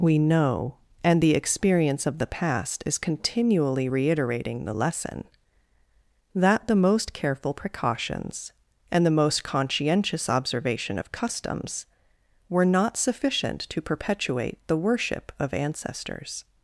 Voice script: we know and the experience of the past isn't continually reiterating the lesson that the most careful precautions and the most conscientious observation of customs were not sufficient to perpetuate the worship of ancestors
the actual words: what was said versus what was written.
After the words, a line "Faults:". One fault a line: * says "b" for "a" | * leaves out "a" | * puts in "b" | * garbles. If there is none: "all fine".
we know and the experience of the past is continually reiterating the lesson that the most careful precautions and the most conscientious observation of customs were not sufficient to perpetuate the worship of ancestors
Faults:
* says "is" for "isn't"